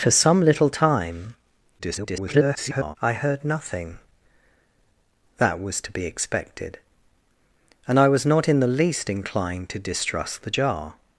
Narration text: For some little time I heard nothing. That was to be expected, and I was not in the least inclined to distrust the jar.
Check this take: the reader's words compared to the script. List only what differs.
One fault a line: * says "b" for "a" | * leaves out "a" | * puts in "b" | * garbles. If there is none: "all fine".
* garbles